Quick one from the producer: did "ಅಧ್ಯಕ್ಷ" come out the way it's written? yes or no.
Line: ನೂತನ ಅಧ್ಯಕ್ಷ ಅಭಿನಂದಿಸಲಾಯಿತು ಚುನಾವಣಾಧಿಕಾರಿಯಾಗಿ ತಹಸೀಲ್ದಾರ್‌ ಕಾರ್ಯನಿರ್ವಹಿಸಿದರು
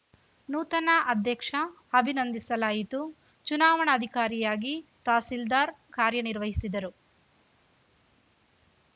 yes